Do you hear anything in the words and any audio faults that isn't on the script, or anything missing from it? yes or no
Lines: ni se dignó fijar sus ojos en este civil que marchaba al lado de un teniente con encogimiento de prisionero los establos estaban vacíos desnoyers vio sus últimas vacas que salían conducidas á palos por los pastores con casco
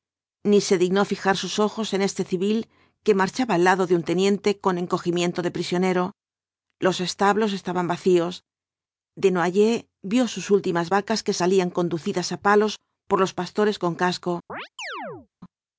yes